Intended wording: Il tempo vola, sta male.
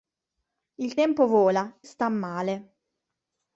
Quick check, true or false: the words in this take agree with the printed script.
true